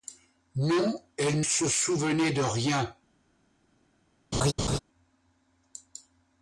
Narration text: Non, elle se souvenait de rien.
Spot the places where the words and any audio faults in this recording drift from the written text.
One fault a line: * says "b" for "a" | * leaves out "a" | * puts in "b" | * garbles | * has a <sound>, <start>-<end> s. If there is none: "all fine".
* has a laugh, 4.3-4.8 s